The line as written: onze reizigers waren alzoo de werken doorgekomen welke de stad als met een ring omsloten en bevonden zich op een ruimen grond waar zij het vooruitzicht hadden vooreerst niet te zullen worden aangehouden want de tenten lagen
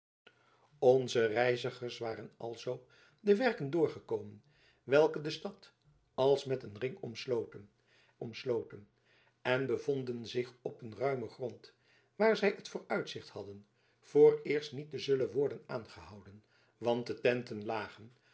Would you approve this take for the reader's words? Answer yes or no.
no